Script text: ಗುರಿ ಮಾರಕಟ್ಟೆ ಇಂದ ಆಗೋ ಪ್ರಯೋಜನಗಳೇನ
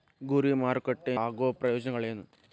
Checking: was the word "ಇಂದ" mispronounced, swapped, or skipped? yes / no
yes